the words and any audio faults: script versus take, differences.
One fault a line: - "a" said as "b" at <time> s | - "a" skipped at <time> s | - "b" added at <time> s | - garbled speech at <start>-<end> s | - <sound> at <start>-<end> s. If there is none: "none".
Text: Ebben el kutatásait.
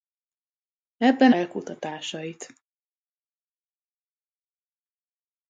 none